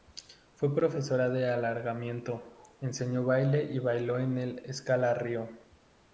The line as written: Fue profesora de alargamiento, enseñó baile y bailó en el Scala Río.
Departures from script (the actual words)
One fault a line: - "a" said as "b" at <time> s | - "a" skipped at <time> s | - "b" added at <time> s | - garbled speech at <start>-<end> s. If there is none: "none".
none